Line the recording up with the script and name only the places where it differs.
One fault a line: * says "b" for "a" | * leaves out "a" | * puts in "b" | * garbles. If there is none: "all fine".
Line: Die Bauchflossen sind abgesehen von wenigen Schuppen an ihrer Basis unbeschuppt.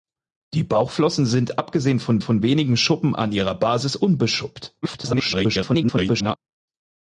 * puts in "von"
* garbles